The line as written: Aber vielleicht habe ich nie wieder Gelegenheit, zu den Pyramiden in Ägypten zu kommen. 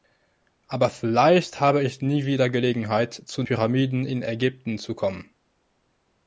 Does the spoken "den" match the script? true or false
false